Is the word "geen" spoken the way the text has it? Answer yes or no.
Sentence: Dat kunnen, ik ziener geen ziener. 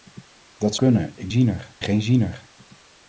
yes